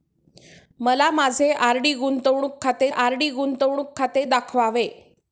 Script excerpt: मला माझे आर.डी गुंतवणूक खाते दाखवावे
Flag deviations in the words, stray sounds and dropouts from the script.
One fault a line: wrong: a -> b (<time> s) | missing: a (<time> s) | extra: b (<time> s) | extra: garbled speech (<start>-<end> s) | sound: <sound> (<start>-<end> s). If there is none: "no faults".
extra: आर.डी गुंतवणूक खाते (2.9 s)